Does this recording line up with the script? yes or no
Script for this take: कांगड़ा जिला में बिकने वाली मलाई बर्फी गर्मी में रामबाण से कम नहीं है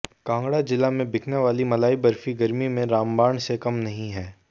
yes